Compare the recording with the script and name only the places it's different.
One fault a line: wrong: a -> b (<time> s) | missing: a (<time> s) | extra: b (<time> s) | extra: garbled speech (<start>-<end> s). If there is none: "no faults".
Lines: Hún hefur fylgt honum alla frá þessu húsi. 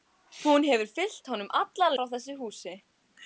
no faults